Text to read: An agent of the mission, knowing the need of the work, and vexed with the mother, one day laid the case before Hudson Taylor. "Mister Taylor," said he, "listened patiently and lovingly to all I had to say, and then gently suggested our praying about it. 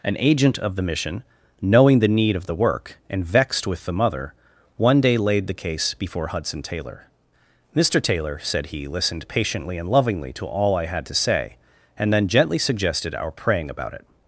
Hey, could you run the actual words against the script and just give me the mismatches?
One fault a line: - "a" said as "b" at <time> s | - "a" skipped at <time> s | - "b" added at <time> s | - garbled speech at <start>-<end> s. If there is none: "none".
none